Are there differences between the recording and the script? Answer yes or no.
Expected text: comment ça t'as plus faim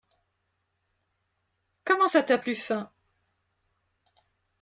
no